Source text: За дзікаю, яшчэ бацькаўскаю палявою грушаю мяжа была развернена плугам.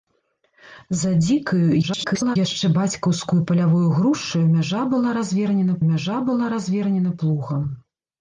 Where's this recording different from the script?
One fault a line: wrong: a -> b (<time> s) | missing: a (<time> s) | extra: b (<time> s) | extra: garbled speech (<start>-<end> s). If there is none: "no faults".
extra: garbled speech (1.8-2.4 s)
extra: мяжа была развернена (5.9 s)